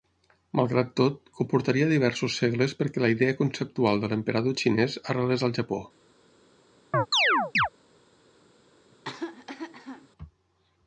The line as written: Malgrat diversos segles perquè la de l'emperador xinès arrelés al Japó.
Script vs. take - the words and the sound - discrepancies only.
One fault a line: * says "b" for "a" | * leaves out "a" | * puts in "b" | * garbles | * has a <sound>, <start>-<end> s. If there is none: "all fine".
* puts in "tot comportaria"
* puts in "idea conceptual"
* has a chirp, 6.9-7.7 s
* has a cough, 8.9-10.1 s